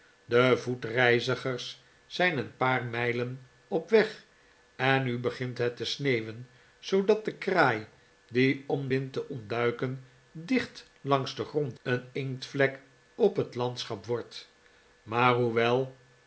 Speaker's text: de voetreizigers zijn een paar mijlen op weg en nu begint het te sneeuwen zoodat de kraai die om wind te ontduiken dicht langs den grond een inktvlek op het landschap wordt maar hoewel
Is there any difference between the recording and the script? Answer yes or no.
no